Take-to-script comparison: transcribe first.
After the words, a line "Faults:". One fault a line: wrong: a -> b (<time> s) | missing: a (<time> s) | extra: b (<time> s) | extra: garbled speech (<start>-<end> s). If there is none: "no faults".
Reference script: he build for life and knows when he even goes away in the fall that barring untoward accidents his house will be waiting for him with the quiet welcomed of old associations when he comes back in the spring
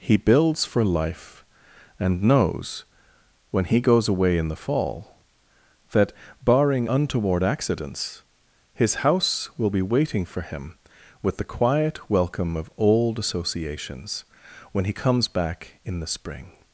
he builds for life and knows when he goes away in the fall that barring untoward accidents his house will be waiting for him with the quiet welcome of old associations when he comes back in the spring
Faults:
wrong: build -> builds (0.2 s)
missing: even (3.8 s)
wrong: welcomed -> welcome (12.1 s)